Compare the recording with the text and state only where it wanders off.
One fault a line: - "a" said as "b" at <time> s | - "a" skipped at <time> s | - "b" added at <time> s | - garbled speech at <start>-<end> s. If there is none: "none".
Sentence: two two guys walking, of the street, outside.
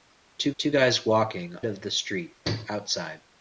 none